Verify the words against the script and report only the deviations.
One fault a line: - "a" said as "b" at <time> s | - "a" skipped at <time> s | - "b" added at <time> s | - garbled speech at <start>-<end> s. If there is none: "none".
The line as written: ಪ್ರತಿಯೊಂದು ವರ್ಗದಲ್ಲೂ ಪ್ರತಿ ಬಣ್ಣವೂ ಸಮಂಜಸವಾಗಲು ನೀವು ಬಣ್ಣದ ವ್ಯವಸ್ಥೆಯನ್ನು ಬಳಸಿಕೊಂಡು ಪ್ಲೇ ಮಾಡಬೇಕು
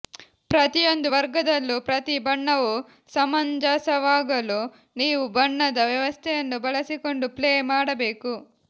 none